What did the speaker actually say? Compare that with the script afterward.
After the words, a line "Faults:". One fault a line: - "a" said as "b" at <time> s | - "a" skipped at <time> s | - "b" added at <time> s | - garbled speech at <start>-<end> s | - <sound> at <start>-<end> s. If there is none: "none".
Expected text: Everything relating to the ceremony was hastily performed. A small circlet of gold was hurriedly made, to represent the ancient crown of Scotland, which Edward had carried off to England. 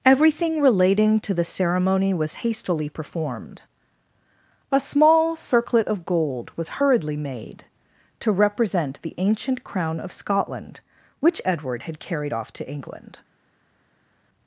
Everything relating to the ceremony was hastily performed. A small circlet of gold was hurriedly made, to represent the ancient crown of Scotland, which Edward had carried off to England.
Faults:
none